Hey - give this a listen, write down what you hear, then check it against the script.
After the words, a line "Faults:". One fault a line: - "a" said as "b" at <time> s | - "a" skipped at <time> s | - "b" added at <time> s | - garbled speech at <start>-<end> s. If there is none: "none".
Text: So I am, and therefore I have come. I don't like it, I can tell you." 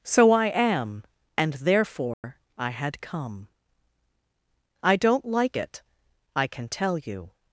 So I am, and therefore I had come. I don't like it, I can tell you."
Faults:
- "have" said as "had" at 2.7 s